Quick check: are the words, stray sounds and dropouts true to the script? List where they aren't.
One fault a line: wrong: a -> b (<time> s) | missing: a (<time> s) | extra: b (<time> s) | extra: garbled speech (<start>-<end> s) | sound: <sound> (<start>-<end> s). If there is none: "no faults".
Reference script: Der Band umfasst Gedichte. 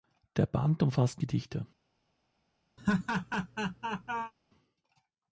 sound: laugh (2.8-4.3 s)